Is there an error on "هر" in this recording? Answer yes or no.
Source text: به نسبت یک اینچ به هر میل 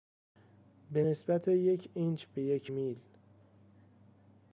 yes